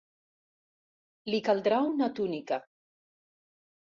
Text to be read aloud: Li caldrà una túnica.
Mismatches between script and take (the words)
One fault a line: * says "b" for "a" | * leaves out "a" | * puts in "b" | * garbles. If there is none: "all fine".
all fine